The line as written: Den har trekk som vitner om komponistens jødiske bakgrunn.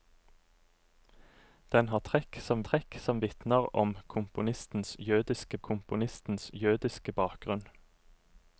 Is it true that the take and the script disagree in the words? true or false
true